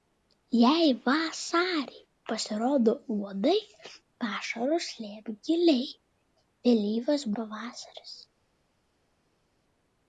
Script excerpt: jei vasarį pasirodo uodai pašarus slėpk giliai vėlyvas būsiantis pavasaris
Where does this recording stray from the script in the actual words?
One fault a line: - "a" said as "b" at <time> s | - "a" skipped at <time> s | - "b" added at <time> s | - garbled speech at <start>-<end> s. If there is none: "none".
- "būsiantis" skipped at 7.3 s